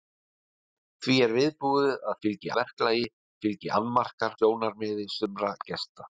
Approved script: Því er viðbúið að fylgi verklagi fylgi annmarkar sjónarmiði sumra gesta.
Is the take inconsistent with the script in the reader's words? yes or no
no